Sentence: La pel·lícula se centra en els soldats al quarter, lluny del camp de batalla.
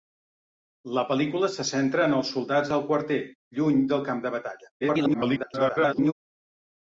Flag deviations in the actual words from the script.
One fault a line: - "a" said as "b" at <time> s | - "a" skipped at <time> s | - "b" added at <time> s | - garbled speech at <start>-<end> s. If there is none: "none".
- garbled speech at 4.8-6.1 s